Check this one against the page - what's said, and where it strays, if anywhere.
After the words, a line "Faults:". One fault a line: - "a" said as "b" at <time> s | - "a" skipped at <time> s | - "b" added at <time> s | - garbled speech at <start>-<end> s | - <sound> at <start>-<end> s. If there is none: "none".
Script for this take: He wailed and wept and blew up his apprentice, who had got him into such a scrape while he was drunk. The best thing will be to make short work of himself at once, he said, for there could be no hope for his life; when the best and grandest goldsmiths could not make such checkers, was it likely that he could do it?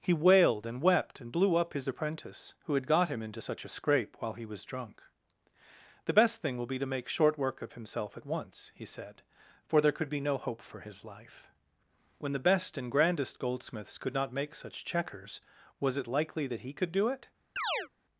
He wailed and wept and blew up his apprentice, who had got him into such a scrape while he was drunk. The best thing will be to make short work of himself at once, he said, for there could be no hope for his life; when the best and grandest goldsmiths could not make such checkers, was it likely that he could do it?
Faults:
- chirp at 17.6-17.9 s